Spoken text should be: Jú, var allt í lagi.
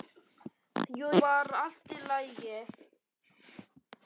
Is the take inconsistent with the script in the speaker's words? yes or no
no